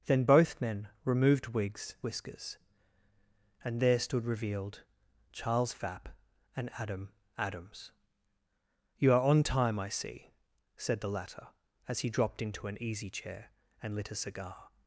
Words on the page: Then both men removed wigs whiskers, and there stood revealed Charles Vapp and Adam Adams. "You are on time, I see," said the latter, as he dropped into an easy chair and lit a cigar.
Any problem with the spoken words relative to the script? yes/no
no